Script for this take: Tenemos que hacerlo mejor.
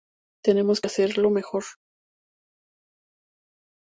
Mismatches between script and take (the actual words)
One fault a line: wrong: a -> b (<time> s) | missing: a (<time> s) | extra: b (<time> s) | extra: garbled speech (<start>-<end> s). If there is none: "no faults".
no faults